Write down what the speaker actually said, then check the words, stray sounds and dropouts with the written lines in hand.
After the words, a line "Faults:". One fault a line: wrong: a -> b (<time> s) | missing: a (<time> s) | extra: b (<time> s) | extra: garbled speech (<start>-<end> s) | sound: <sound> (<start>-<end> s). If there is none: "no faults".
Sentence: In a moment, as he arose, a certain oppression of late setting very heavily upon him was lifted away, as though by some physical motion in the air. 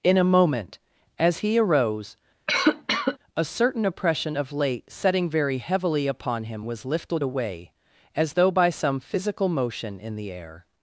In a moment, as he arose, a certain oppression of late setting very heavily upon him was lifted away, as though by some physical motion in the air.
Faults:
sound: cough (2.5-3.2 s)